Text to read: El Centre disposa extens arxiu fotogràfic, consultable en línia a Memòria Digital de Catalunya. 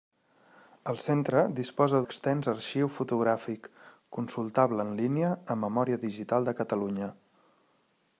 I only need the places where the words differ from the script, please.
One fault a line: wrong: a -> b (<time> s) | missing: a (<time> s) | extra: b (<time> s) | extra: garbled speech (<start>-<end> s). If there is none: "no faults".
no faults